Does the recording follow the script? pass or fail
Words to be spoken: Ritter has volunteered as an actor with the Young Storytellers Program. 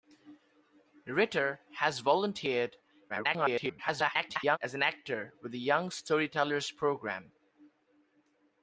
fail